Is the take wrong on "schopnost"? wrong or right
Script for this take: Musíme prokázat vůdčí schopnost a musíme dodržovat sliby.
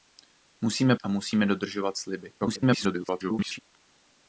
wrong